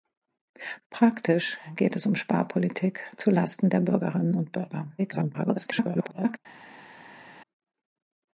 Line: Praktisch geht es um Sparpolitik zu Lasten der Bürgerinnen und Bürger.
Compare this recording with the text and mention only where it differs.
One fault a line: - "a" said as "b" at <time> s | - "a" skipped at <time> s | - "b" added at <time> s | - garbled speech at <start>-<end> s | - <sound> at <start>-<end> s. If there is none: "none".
- garbled speech at 5.0-6.4 s